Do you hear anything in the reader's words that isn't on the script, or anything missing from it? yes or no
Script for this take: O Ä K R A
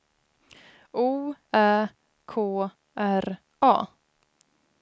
no